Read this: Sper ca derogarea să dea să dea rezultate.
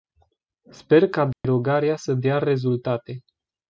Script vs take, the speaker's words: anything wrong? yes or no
yes